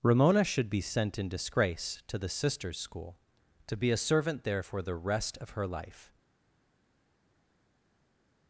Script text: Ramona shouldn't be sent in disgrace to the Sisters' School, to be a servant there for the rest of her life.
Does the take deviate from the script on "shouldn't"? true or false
true